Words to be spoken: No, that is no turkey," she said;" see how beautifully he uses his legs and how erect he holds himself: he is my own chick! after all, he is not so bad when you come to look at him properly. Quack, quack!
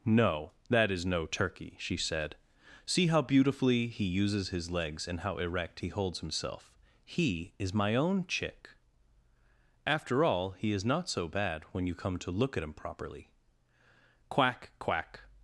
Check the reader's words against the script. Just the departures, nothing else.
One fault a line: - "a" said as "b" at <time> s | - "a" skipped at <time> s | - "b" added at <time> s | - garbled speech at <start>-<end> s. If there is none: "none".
none